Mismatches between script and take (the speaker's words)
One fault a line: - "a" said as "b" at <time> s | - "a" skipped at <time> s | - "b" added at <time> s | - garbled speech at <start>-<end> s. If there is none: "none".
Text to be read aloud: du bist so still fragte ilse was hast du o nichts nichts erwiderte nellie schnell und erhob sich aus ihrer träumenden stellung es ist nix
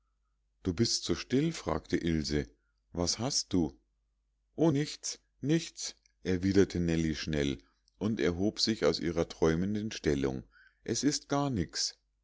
- "gar" added at 11.3 s